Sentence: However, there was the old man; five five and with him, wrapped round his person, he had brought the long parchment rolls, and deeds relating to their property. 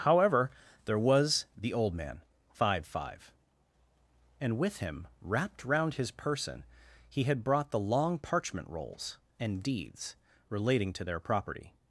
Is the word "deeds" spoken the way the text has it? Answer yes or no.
yes